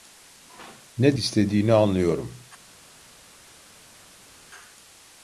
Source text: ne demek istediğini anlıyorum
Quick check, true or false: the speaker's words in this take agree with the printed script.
false